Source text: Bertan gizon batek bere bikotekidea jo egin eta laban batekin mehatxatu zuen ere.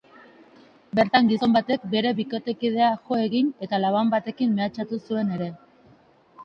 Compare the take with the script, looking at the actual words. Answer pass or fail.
pass